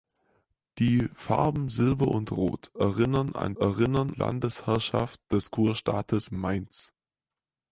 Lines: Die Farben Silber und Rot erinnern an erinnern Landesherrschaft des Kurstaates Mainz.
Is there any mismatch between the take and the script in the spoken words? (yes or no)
no